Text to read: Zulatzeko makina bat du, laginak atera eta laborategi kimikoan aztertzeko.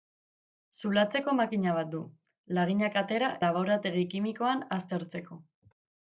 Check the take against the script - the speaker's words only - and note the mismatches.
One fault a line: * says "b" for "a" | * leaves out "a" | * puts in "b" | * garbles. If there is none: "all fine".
* leaves out "eta"